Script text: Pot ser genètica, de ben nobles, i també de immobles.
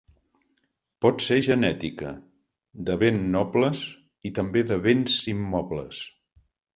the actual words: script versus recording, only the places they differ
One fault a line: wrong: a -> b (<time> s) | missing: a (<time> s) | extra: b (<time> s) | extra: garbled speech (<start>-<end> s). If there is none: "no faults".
extra: béns (4.9 s)